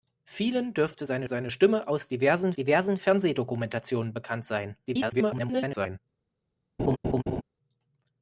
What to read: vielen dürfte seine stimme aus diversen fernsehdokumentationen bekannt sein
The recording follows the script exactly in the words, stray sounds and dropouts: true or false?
false